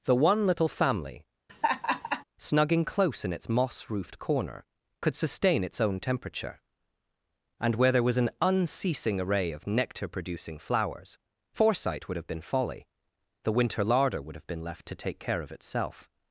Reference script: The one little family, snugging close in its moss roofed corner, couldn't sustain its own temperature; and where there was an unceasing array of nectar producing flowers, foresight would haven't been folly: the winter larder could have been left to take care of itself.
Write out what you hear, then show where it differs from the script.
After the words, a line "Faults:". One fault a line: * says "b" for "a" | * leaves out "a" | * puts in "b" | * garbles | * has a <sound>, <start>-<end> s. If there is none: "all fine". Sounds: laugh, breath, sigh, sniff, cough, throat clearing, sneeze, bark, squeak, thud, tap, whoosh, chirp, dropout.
The one little family, snugging close in its moss roofed corner, could sustain its own temperature; and where there was an unceasing array of nectar producing flowers, foresight would have been folly: the winter larder would have been left to take care of itself.
Faults:
* has a laugh, 1.5-2.2 s
* says "could" for "couldn't"
* says "have" for "haven't"
* says "would" for "could"